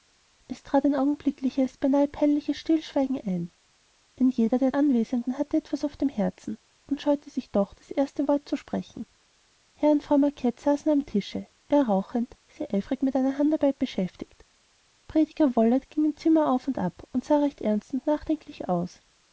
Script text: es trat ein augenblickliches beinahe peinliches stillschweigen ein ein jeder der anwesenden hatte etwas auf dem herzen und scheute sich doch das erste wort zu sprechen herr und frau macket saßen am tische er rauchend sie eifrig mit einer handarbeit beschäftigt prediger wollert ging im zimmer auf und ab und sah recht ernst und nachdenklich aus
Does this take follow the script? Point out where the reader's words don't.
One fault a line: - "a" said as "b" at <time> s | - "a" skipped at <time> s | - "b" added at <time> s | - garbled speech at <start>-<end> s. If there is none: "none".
none